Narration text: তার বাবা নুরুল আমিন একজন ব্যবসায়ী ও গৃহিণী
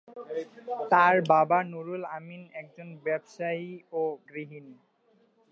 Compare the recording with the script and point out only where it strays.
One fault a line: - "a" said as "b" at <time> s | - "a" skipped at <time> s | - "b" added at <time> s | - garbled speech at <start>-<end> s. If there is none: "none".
none